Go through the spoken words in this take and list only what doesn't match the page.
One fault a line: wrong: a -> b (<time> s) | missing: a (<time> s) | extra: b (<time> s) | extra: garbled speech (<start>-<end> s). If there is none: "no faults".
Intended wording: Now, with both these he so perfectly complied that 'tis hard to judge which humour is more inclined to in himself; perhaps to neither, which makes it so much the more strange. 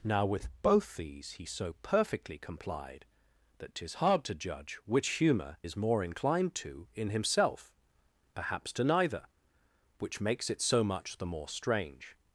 no faults